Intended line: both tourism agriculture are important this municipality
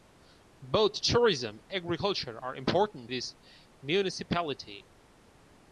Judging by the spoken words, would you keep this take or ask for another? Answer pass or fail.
pass